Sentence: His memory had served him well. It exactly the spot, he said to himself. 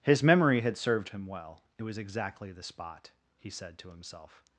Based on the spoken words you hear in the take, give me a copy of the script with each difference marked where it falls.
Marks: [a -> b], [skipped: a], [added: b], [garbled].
His memory had served him well. It [added: was] exactly the spot, he said to himself.